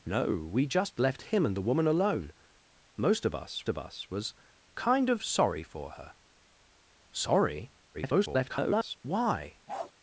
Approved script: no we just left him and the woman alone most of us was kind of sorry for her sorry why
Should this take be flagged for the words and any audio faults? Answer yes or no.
yes